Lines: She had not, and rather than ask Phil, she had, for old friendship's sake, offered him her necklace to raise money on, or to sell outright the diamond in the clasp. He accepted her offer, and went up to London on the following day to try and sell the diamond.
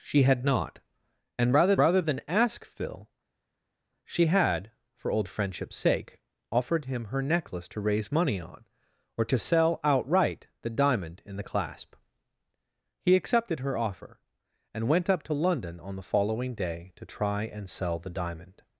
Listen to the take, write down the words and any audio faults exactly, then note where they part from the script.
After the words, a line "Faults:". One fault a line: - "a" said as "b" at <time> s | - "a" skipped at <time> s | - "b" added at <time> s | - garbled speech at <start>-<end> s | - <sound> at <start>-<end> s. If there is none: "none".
She had not, and rather rather than ask Phil, she had, for old friendship's sake, offered him her necklace to raise money on, or to sell outright the diamond in the clasp. He accepted her offer, and went up to London on the following day to try and sell the diamond.
Faults:
- "rather" added at 1.8 s